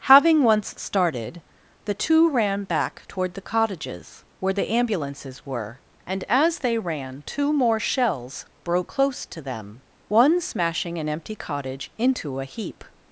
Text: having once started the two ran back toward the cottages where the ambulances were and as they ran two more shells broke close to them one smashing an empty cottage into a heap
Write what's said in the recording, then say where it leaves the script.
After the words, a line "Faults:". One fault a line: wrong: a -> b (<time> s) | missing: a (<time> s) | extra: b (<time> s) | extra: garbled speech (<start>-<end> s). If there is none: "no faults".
having once started the two ran back toward the cottages where the ambulances were and as they ran two more shells broke close to them one smashing an empty cottage into a heap
Faults:
no faults